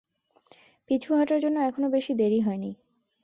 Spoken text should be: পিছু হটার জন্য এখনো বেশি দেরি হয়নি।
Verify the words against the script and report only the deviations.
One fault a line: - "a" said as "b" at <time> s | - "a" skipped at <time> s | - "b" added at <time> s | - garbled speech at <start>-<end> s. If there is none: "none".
none